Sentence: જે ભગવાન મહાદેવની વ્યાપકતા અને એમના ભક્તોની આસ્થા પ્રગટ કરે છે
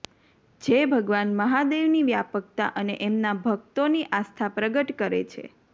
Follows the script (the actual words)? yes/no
yes